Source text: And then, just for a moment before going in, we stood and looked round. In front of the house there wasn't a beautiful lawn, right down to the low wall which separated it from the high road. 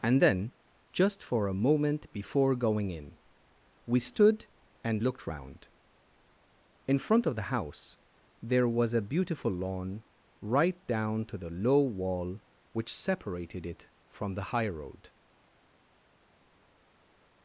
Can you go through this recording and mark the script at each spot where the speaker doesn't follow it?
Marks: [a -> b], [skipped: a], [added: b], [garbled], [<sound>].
And then, just for a moment before going in, we stood and looked round. In front of the house there [wasn't -> was] a beautiful lawn, right down to the low wall which separated it from the high road.